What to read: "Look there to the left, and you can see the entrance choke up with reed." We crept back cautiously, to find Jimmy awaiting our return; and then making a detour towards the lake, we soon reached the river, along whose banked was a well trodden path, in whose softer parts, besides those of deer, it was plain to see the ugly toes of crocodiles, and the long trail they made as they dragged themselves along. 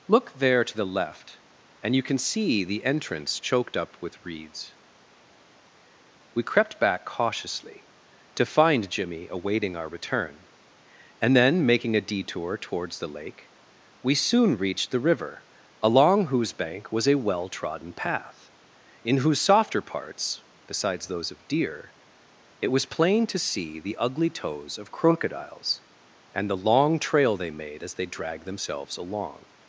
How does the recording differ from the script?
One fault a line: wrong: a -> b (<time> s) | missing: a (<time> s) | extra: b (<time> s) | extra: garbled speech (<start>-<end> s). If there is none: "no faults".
wrong: choke -> choked (3.4 s)
wrong: reed -> reeds (4.2 s)
wrong: banked -> bank (16.5 s)